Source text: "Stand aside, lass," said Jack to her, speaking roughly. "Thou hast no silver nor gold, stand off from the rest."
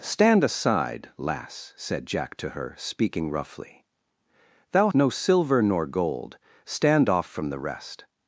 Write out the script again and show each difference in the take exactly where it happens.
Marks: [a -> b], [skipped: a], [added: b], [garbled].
"Stand aside, lass," said Jack to her, speaking roughly. "Thou [skipped: hast] no silver nor gold, stand off from the rest."